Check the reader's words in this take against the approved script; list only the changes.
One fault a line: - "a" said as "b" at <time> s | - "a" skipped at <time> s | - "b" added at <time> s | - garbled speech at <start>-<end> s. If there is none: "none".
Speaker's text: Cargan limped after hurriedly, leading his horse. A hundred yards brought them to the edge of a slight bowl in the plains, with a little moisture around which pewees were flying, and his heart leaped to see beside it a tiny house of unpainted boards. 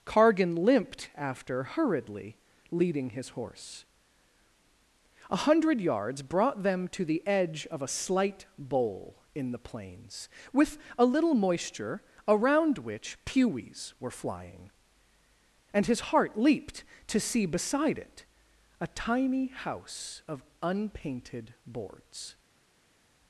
none